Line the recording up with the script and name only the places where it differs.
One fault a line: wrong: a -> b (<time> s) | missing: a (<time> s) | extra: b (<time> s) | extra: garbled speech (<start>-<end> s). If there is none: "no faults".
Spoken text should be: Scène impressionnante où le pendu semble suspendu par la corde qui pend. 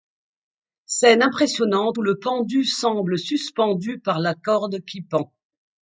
no faults